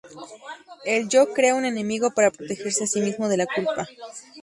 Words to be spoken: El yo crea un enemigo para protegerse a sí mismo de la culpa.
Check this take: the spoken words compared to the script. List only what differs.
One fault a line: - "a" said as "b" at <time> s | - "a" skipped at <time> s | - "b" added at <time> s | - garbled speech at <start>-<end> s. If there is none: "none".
none